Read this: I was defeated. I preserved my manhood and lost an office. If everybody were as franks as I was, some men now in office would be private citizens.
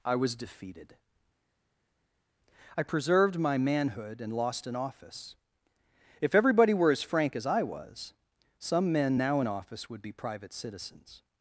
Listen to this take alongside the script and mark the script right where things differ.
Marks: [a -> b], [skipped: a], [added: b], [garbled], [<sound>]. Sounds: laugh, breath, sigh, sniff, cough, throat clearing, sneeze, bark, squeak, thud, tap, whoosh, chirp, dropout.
I was defeated. I preserved my manhood and lost an office. If everybody were as [franks -> frank] as I was, some men now in office would be private citizens.